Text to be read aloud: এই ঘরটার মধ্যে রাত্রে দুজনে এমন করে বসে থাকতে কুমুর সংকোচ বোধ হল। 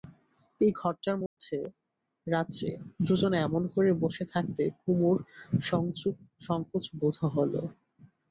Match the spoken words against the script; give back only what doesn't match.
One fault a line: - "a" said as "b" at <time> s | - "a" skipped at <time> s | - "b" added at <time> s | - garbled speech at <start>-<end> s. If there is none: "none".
none